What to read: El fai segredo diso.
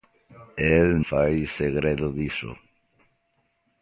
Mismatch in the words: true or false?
false